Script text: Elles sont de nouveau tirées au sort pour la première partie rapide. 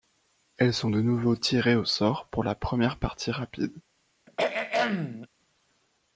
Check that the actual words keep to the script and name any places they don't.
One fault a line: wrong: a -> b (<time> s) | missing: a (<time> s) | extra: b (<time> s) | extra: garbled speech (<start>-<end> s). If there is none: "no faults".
no faults